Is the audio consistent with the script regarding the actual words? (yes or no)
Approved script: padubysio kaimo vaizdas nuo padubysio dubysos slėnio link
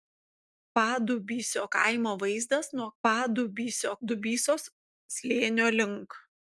yes